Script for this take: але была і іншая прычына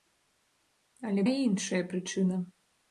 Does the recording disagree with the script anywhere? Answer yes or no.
yes